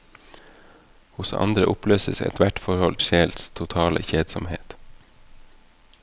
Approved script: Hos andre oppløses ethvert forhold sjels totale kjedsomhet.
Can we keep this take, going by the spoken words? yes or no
yes